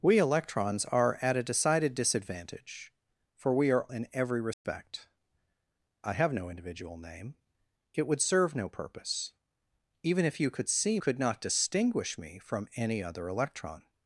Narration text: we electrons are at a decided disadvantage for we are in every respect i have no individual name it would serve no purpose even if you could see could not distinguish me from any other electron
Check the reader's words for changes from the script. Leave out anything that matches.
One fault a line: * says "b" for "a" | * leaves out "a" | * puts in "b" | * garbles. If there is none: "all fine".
all fine